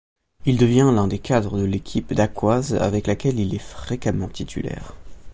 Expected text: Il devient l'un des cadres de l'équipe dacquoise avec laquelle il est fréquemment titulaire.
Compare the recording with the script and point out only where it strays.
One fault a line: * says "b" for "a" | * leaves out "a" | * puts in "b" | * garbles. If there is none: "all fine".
all fine